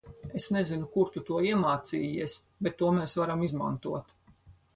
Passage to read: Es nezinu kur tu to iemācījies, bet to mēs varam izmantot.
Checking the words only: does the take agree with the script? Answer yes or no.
yes